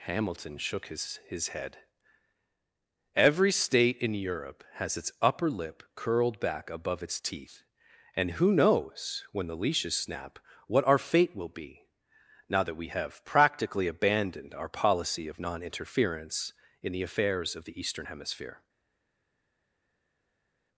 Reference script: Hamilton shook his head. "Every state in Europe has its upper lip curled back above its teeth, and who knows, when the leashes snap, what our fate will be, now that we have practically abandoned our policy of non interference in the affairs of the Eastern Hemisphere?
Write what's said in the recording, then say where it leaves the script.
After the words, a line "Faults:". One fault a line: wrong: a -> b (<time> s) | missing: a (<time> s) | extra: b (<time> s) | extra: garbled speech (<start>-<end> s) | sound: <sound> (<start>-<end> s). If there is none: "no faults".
Hamilton shook his his head. "Every state in Europe has its upper lip curled back above its teeth, and who knows, when the leashes snap, what our fate will be, now that we have practically abandoned our policy of non interference in the affairs of the Eastern Hemisphere?
Faults:
extra: his (1.3 s)